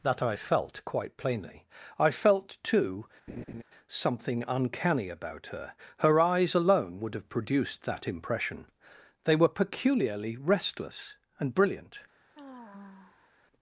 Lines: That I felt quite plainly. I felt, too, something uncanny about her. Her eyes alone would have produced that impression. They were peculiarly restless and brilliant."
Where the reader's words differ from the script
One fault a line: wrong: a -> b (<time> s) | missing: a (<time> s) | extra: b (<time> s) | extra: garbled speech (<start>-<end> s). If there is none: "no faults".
no faults